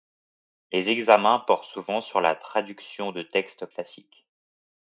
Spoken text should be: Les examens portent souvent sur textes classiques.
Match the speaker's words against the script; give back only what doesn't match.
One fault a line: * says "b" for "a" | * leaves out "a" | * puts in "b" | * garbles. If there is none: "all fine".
* puts in "la traduction de"